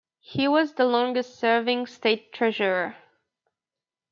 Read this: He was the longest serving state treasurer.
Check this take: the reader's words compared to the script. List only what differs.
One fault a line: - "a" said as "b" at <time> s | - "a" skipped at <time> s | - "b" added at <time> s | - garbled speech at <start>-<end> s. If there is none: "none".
none